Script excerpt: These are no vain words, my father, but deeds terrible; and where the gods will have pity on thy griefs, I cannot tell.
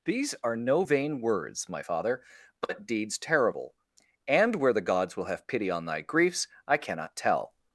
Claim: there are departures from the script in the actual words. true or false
false